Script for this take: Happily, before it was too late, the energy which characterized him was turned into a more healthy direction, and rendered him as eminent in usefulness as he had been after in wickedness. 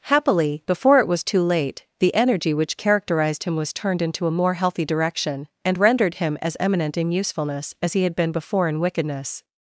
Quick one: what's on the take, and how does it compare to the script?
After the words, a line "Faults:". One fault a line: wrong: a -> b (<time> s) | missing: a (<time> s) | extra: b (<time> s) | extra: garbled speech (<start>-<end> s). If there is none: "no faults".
Happily, before it was too late, the energy which characterized him was turned into a more healthy direction, and rendered him as eminent in usefulness as he had been before in wickedness.
Faults:
wrong: after -> before (8.3 s)